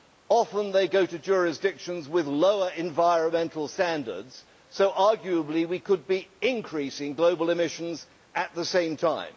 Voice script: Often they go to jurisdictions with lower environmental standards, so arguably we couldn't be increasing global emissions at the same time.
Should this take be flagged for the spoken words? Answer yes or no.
yes